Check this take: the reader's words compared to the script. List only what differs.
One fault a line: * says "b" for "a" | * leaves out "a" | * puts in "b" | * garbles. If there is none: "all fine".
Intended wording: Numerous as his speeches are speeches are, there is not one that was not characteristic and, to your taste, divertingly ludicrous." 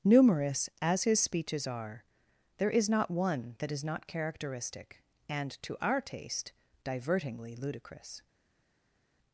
* leaves out "speeches are"
* says "is" for "was"
* says "our" for "your"